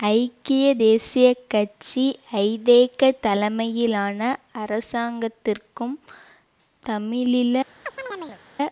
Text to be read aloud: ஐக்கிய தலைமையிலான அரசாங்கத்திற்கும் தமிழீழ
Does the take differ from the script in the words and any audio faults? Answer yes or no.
yes